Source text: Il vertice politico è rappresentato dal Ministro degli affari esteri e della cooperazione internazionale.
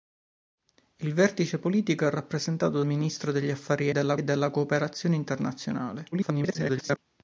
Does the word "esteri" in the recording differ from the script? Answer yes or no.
yes